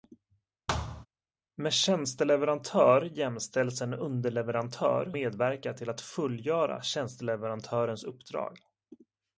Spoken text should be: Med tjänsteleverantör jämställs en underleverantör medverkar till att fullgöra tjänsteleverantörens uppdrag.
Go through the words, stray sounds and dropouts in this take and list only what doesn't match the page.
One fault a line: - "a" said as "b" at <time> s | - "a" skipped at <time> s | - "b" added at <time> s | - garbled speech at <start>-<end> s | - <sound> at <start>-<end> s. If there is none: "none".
- thud at 0.7-1.1 s